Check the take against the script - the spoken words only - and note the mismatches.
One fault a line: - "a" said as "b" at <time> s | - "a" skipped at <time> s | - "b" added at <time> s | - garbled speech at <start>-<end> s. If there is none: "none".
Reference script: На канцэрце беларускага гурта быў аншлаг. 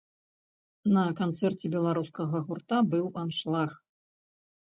none